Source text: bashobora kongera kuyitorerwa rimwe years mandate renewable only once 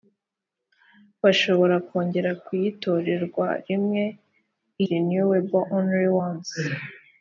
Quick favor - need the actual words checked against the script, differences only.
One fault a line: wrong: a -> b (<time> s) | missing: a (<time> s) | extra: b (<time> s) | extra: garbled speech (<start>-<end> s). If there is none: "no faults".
missing: years mandate (4.0 s)